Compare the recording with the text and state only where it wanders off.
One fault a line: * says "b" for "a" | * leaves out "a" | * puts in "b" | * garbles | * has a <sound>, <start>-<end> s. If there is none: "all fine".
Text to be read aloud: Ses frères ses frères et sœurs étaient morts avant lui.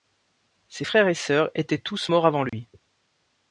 * leaves out "ses frères"
* puts in "tous"
* has a dropout, 2.5-2.5 s